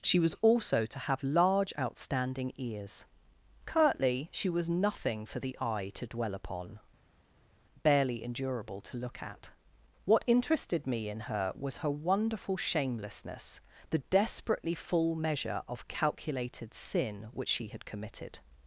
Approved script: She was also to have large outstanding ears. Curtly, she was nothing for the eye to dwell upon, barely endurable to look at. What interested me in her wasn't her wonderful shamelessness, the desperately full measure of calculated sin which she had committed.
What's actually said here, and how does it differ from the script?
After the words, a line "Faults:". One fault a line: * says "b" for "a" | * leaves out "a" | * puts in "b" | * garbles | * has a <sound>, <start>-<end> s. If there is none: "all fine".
She was also to have large outstanding ears. Curtly, she was nothing for the eye to dwell upon, barely endurable to look at. What interested me in her was her wonderful shamelessness, the desperately full measure of calculated sin which she had committed.
Faults:
* says "was" for "wasn't"